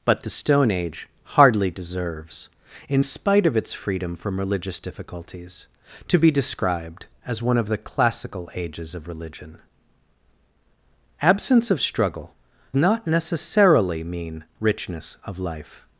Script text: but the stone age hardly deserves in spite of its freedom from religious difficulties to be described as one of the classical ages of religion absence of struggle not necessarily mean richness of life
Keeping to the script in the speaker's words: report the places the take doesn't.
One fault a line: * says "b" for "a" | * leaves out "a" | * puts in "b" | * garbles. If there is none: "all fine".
all fine